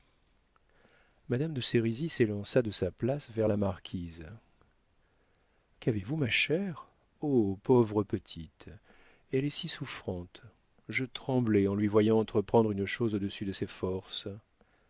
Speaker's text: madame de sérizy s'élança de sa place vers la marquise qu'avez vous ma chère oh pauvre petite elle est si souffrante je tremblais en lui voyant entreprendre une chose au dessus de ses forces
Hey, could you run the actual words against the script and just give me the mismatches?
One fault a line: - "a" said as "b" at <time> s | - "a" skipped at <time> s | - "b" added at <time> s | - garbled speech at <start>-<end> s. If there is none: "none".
none